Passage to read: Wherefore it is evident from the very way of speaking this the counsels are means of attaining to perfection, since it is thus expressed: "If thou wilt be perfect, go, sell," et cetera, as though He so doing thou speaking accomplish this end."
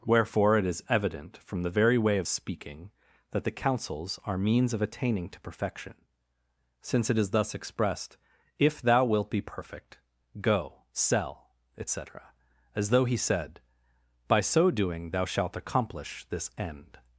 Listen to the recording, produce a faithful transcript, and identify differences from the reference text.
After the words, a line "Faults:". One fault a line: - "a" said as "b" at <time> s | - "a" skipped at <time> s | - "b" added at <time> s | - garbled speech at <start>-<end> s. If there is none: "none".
Wherefore it is evident from the very way of speaking that the counsels are means of attaining to perfection, since it is thus expressed: "If thou wilt be perfect, go, sell," et cetera, as though He said: "By so doing thou shalt accomplish this end."
Faults:
- "this" said as "that" at 3.3 s
- "said By" added at 13.1 s
- "speaking" said as "shalt" at 15.2 s